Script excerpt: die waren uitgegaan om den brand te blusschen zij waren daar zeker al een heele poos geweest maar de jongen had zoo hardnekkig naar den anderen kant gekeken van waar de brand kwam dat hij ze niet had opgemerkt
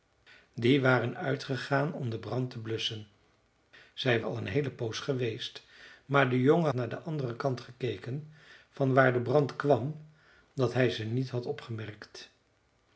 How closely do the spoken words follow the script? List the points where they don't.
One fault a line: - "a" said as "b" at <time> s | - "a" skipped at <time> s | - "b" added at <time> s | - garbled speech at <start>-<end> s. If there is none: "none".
- "waren daar zeker" skipped at 4.2 s
- "had zoo hardnekkig" skipped at 6.7 s